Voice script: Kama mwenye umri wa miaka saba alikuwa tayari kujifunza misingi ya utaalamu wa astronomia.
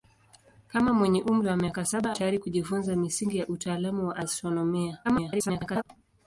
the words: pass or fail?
fail